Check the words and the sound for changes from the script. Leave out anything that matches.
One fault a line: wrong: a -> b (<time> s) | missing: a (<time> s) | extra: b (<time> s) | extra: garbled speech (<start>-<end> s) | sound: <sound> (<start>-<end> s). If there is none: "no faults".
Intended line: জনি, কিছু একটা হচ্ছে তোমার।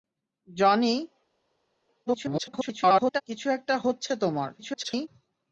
extra: garbled speech (2.1-3.2 s)
extra: garbled speech (4.6-5.1 s)